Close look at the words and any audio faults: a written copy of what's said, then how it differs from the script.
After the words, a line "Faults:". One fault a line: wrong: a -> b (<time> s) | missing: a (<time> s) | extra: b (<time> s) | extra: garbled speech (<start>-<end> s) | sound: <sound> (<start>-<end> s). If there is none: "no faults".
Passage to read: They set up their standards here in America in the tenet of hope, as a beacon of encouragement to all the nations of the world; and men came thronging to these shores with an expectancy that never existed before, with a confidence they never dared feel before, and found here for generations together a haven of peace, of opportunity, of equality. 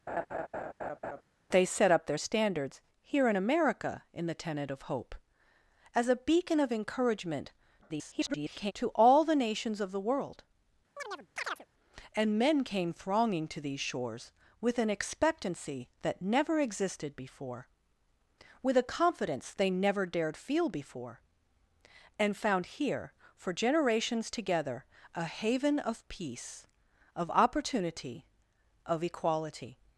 They set up their standards here in America in the tenet of hope, as a beacon of encouragement [garbled] to all the nations of the world; and men came thronging to these shores with an expectancy that never existed before, with a confidence they never dared feel before, and found here for generations together a haven of peace, of opportunity, of equality.
Faults:
sound: laugh (0.1-1.2 s)
extra: garbled speech (7.8-8.7 s)
sound: chirp (11.0-11.7 s)